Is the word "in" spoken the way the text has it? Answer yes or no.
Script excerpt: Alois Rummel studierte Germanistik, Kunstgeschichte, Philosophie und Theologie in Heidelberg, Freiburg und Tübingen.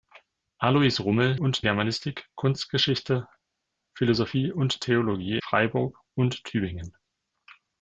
no